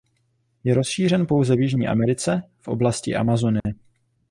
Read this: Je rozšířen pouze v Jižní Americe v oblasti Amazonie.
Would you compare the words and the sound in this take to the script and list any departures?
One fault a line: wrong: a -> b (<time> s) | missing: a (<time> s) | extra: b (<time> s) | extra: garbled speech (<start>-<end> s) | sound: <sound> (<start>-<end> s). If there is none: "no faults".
sound: dropout (3.6-3.7 s)